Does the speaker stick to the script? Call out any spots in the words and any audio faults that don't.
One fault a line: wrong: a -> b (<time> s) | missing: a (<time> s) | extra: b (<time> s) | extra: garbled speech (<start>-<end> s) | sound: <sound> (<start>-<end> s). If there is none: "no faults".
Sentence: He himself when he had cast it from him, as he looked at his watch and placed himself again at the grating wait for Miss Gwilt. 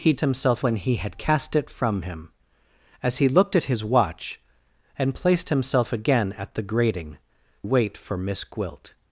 no faults